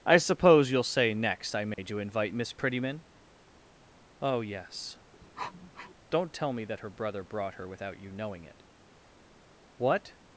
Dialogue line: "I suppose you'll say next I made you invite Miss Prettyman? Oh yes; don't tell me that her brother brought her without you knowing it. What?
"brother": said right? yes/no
yes